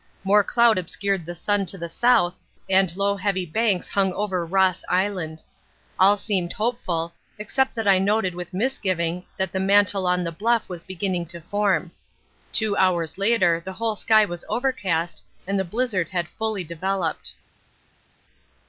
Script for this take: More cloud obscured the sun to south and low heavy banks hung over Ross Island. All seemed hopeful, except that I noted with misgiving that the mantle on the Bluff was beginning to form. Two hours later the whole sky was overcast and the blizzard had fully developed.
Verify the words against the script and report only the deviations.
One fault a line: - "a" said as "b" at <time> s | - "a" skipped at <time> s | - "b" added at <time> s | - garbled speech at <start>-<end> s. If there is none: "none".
- "the" added at 1.8 s